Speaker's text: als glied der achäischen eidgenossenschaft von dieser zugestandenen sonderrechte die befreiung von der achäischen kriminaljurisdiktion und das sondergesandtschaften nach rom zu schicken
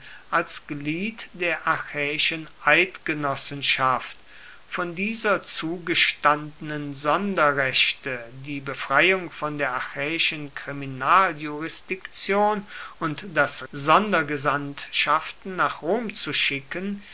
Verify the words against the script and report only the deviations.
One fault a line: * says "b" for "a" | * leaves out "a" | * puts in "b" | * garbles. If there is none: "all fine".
all fine